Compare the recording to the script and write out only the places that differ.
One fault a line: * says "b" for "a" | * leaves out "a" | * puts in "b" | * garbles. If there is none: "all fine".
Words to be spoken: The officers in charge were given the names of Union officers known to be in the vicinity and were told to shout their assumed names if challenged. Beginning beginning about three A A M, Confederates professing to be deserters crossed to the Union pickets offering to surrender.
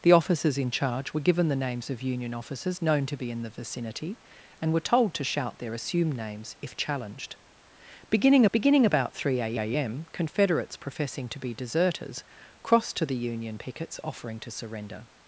all fine